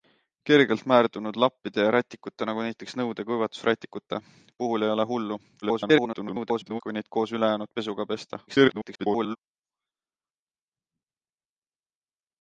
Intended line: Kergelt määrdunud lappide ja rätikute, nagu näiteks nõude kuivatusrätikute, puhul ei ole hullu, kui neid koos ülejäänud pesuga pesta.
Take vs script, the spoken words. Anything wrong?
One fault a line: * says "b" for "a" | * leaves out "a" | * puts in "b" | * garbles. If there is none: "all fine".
* garbles
* garbles